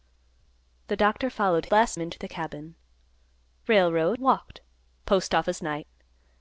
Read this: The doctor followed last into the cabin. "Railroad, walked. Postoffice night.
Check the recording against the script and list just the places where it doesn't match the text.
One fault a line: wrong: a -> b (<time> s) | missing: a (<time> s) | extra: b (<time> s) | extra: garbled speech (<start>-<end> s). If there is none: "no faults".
no faults